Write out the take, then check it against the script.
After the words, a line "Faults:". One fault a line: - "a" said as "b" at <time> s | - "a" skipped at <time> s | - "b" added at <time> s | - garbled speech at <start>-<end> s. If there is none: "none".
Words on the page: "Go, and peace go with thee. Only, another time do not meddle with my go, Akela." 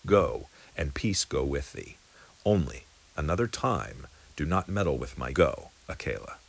"Go, and peace go with thee. Only, another time do not meddle with my go, Akela."
Faults:
none